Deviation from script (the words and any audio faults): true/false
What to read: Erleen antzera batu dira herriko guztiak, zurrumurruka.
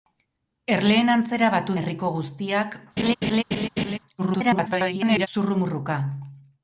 true